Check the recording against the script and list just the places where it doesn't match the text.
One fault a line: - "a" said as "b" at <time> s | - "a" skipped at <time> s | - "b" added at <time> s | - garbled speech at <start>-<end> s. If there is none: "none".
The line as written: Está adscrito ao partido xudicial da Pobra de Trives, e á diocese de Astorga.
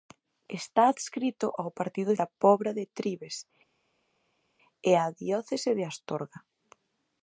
- "xudicial" skipped at 2.1 s